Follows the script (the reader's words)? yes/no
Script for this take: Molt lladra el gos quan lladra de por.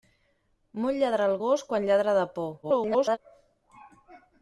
no